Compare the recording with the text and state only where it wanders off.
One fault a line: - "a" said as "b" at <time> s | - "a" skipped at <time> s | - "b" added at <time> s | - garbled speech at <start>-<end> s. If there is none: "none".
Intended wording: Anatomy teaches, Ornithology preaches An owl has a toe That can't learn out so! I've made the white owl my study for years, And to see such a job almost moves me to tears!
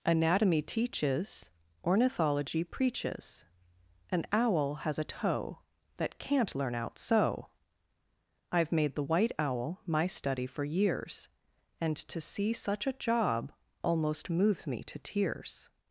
none